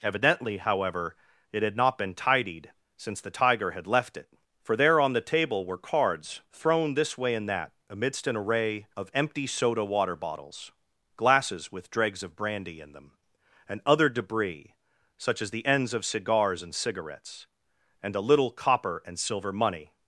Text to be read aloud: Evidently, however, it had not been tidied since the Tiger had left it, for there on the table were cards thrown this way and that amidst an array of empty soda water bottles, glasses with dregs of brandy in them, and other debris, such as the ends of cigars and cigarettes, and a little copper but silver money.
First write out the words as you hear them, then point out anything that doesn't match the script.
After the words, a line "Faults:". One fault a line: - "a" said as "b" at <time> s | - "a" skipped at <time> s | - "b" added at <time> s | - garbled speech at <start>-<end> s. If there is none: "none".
Evidently, however, it had not been tidied since the Tiger had left it, for there on the table were cards thrown this way and that amidst an array of empty soda water bottles, glasses with dregs of brandy in them, and other debris, such as the ends of cigars and cigarettes, and a little copper and silver money.
Faults:
- "but" said as "and" at 19.1 s